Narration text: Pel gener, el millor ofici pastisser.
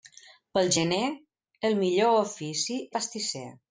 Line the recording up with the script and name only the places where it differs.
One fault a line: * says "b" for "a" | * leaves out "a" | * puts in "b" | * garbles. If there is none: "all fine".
all fine